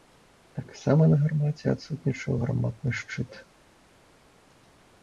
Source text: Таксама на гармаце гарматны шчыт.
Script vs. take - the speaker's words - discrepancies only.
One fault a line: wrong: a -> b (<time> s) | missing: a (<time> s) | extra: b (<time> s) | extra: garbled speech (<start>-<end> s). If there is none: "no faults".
extra: адсутнічаў (1.8 s)